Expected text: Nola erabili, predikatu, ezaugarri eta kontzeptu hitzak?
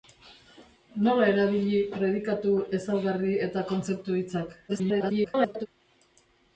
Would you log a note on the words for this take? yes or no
yes